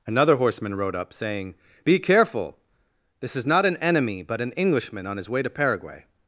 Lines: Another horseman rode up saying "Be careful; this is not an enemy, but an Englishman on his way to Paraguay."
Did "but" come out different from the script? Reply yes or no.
no